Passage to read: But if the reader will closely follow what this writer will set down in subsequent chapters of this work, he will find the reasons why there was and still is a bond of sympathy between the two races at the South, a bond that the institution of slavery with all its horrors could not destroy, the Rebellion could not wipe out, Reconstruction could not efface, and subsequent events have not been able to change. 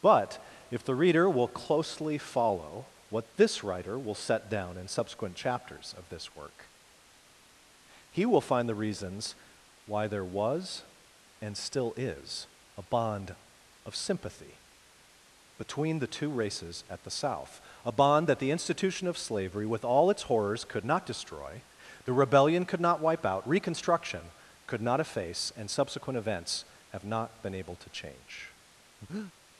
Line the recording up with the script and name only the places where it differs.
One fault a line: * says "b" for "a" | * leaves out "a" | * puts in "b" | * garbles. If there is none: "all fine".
all fine